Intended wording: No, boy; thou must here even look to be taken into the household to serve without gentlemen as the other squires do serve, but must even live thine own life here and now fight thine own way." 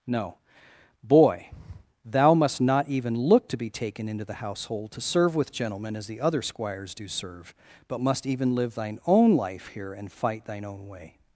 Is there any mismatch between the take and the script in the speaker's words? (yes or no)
yes